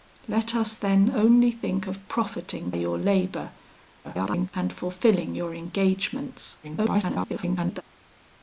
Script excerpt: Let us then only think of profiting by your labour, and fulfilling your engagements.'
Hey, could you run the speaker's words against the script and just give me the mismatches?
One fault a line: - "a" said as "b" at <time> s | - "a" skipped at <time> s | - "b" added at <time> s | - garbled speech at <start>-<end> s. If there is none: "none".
- "by" skipped at 2.7 s
- garbled speech at 4.0-4.5 s
- garbled speech at 6.6-7.8 s